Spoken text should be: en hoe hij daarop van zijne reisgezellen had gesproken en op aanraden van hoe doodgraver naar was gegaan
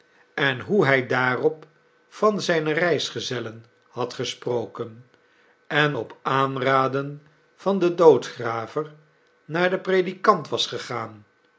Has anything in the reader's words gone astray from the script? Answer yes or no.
yes